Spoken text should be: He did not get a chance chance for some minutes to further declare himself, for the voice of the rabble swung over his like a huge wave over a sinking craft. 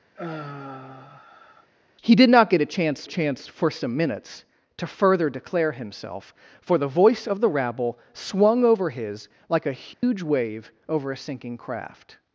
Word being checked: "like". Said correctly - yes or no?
yes